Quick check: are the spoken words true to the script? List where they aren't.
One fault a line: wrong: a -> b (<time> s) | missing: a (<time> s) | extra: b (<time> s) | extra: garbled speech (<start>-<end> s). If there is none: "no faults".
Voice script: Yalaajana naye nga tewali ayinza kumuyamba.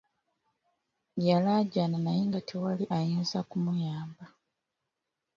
no faults